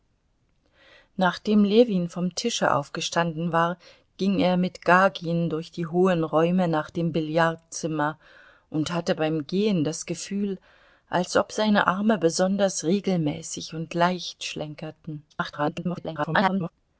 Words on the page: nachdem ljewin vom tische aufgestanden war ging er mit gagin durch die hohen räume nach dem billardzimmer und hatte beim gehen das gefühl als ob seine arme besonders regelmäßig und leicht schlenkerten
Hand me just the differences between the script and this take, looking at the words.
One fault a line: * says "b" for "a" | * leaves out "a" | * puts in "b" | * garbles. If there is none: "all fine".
* garbles